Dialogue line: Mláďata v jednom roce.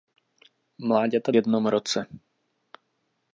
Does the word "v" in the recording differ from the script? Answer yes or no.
no